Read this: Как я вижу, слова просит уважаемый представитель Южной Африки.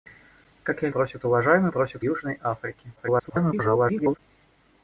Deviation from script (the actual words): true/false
true